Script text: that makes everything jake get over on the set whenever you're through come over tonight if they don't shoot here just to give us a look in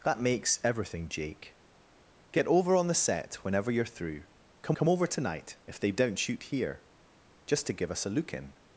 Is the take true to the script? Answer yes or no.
no